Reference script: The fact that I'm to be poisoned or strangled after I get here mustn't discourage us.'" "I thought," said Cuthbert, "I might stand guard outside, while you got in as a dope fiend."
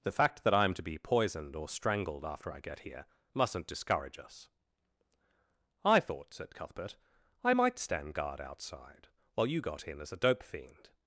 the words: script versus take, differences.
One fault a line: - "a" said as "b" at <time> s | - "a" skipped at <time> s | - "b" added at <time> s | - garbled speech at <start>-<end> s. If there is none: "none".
none